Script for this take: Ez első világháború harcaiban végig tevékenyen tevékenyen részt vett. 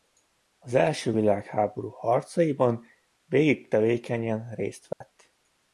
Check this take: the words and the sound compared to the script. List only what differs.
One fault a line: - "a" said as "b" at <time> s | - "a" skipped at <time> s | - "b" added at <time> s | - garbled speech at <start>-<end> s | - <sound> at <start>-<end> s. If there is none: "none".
- "Ez" said as "Az" at 0.6 s
- "tevékenyen" skipped at 4.5 s
- dropout at 4.9-5.0 s